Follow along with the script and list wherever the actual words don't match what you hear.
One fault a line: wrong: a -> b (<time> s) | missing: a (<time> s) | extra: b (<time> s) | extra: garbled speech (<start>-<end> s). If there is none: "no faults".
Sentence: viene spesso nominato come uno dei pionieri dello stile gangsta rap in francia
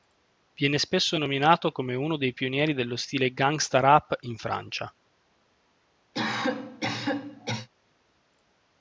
no faults